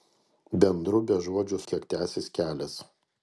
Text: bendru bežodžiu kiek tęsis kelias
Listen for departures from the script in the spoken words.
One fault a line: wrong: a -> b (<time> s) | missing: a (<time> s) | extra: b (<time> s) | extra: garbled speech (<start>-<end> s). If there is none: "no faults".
no faults